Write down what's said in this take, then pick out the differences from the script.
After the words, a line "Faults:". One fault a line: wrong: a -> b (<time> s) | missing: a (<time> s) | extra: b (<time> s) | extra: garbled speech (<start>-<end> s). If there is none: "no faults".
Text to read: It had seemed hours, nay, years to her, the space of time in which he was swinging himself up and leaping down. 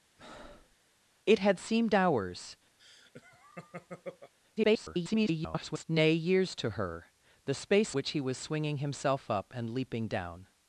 It had seemed hours, [garbled] nay, years to her, the space which he was swinging himself up and leaping down.
Faults:
extra: garbled speech (4.6-5.8 s)
missing: of time in (7.9 s)